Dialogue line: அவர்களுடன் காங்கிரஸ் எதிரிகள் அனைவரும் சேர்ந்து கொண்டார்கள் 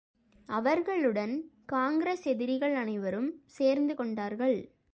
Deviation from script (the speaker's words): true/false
false